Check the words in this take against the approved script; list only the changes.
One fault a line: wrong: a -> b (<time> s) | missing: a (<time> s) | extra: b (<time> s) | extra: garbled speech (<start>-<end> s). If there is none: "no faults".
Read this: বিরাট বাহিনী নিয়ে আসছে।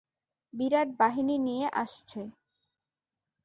no faults